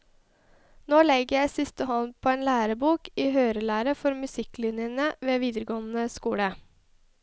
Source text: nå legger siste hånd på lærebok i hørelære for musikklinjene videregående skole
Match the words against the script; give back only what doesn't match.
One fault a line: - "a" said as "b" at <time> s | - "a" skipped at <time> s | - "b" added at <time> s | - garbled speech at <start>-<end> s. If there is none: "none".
- "jeg" added at 1.4 s
- "en" added at 2.3 s
- "ved" added at 5.3 s